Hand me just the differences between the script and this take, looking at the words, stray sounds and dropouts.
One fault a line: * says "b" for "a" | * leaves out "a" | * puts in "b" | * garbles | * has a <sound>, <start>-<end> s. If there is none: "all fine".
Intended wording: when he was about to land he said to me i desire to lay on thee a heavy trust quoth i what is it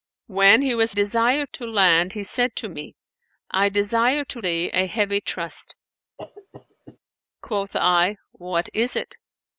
* says "desire" for "about"
* leaves out "lay on"
* has a cough, 6.2-7.0 s